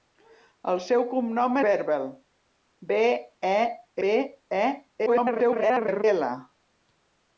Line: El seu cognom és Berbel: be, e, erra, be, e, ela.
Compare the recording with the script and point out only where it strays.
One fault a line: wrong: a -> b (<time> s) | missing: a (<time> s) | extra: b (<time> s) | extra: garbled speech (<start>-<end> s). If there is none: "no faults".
missing: és (1.6 s)
missing: erra (3.6 s)
extra: garbled speech (5.1-6.0 s)